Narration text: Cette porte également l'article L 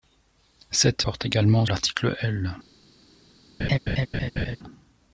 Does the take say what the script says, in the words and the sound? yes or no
no